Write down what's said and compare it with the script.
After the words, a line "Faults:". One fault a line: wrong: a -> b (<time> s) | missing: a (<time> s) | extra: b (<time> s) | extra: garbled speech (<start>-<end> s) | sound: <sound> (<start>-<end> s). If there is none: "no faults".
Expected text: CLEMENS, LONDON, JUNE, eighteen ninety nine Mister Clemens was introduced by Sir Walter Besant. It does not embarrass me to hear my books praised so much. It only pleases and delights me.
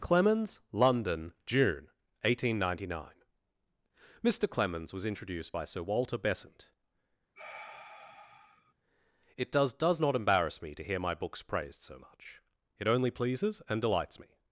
CLEMENS, LONDON, JUNE, eighteen ninety nine Mister Clemens was introduced by Sir Walter Besant. It does does not embarrass me to hear my books praised so much. It only pleases and delights me.
Faults:
sound: sigh (7.4-8.7 s)
extra: does (9.7 s)